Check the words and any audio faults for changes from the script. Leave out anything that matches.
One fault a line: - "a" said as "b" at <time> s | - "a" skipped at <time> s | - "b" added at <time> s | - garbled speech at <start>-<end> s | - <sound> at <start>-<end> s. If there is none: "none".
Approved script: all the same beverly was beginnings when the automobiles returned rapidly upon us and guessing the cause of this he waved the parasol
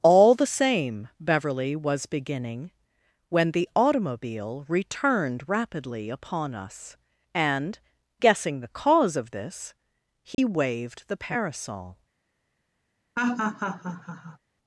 - "beginnings" said as "beginning" at 2.1 s
- "automobiles" said as "automobile" at 3.8 s
- dropout at 10.3-10.4 s
- laugh at 13.2-14.4 s